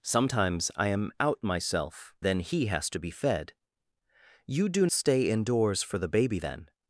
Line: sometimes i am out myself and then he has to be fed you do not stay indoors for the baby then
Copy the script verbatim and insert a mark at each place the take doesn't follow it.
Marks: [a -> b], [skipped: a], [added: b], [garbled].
sometimes i am out myself [skipped: and] then he has to be fed you do [skipped: not] stay indoors for the baby then